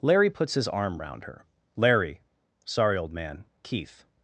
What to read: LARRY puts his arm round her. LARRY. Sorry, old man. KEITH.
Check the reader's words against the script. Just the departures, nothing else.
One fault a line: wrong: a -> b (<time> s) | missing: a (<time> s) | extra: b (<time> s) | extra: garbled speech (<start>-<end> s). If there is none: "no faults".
no faults